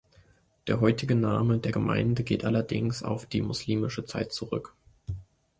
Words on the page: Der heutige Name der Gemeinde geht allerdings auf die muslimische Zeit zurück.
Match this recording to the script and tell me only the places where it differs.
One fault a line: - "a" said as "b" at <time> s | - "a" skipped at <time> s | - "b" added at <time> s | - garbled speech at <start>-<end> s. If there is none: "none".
none